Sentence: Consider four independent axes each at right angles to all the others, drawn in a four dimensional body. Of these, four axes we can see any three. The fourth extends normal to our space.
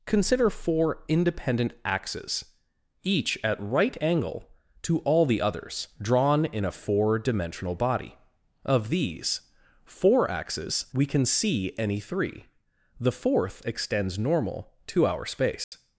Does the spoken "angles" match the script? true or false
false